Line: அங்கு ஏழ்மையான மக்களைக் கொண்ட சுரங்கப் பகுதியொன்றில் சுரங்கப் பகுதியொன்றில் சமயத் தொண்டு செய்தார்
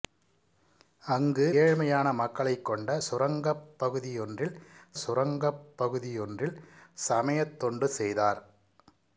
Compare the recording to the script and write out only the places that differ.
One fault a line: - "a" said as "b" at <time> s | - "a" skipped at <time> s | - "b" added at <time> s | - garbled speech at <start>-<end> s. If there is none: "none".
none